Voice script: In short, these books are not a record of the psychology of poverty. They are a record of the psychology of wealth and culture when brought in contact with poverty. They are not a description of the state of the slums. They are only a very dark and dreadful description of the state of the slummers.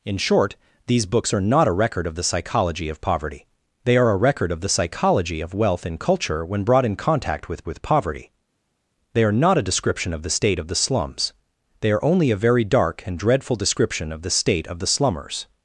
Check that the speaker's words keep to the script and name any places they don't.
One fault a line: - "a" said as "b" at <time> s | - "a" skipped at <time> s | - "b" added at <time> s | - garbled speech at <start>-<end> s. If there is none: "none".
- "with" added at 7.6 s